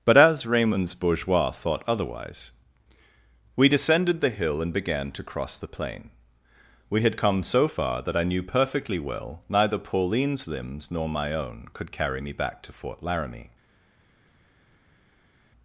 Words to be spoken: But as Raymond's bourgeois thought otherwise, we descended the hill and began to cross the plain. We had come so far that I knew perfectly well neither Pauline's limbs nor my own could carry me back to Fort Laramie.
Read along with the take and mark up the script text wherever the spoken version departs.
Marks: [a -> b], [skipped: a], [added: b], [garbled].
But as Raymond's bourgeois thought otherwise, we descended the hill and began to cross the plain. We had come so far that I knew perfectly well neither Pauline's limbs nor my own could carry me back to Fort Laramie.